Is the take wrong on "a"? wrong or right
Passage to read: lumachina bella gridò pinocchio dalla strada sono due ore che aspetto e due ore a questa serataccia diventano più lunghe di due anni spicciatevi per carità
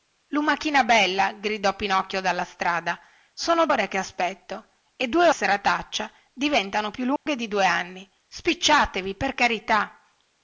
wrong